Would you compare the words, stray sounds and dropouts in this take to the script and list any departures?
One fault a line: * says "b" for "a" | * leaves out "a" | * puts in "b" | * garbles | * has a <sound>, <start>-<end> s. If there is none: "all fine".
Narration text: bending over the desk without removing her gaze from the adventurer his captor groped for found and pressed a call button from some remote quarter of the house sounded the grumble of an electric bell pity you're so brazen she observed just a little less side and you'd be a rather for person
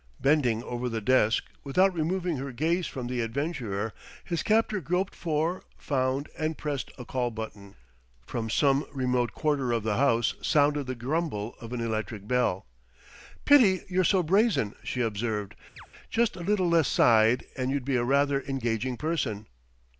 * has a chirp, 15.8-15.9 s
* says "engaging" for "for"